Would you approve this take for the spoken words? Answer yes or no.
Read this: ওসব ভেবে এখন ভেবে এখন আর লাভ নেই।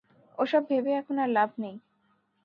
no